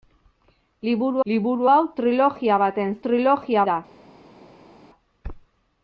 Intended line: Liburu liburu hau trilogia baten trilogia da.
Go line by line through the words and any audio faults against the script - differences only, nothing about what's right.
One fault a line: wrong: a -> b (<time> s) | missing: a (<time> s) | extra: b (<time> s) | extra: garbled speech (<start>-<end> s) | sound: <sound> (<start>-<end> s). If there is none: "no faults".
no faults